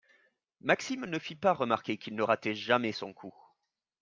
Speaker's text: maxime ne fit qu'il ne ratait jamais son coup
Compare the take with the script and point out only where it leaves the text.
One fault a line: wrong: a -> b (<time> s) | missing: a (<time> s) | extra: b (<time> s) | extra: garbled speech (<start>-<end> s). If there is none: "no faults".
extra: pas remarquer (1.4 s)